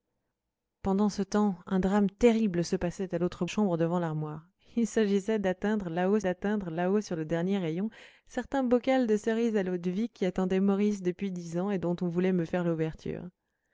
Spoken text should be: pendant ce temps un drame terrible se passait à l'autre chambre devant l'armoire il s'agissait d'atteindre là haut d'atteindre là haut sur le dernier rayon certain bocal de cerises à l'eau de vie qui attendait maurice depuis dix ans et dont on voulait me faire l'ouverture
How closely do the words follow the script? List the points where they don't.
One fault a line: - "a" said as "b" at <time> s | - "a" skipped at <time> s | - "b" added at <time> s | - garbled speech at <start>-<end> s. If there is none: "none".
none